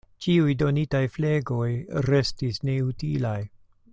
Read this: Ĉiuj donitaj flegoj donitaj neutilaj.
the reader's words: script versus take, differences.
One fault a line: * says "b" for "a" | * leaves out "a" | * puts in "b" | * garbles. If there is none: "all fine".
* says "restis" for "donitaj"